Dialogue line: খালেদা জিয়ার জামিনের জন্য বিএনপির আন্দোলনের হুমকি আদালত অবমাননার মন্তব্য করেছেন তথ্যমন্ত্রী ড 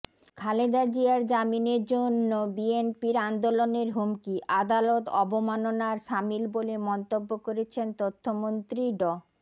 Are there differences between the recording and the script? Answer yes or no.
yes